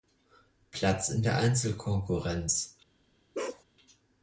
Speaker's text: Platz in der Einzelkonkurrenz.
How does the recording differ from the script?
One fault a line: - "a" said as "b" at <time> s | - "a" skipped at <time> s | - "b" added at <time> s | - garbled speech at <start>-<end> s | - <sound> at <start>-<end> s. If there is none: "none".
- bark at 3.3-3.6 s